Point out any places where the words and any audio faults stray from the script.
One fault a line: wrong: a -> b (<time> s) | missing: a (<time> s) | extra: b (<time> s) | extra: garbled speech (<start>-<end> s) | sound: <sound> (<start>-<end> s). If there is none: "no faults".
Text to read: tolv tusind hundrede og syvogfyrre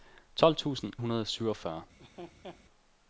sound: laugh (2.0-2.6 s)